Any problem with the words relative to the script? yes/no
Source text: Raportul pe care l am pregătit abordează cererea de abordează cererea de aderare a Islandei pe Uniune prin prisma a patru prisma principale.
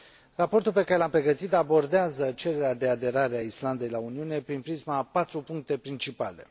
yes